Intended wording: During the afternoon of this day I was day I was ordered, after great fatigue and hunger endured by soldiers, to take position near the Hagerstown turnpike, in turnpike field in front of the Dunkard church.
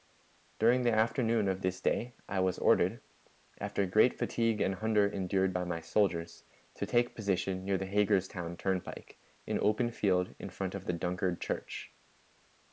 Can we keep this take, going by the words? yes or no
no